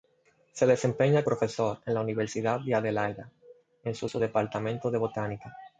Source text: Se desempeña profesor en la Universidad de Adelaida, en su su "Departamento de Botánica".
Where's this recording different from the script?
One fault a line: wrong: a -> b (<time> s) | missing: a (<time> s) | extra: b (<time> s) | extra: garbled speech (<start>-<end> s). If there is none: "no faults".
no faults